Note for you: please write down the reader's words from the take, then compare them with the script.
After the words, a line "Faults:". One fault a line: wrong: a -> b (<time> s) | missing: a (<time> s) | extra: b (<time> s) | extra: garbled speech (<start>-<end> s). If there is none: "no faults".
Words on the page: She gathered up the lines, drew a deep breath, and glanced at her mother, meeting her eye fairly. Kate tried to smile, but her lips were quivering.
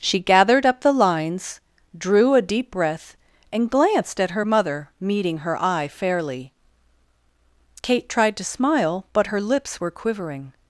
She gathered up the lines, drew a deep breath, and glanced at her mother, meeting her eye fairly. Kate tried to smile, but her lips were quivering.
Faults:
no faults